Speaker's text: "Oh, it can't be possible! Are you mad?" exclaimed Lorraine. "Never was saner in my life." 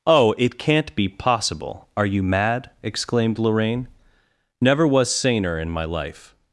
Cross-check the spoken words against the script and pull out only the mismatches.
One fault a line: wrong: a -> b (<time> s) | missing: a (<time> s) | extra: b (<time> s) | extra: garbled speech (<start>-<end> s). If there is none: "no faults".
no faults